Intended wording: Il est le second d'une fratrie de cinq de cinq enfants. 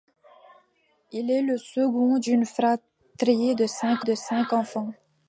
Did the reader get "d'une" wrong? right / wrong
right